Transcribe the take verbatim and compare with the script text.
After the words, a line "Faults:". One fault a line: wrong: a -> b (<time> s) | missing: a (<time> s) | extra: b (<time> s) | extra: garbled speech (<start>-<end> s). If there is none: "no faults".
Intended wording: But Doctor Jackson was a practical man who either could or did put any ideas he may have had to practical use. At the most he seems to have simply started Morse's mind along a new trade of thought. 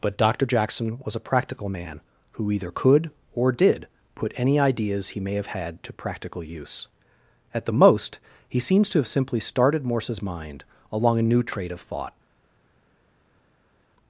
But Doctor Jackson was a practical man who either could or did put any ideas he may have had to practical use. At the most he seems to have simply started Morse's mind along a new trade of thought.
Faults:
no faults